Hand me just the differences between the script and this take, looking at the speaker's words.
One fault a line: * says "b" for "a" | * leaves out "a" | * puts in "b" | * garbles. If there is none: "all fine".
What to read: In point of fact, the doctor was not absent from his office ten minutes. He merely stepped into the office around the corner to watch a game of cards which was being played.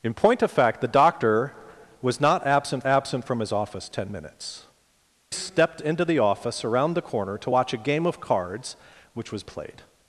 * puts in "absent"
* leaves out "He merely"
* leaves out "being"